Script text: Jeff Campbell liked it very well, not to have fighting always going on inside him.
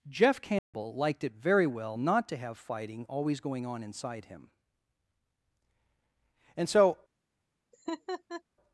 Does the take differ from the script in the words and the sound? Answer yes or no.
yes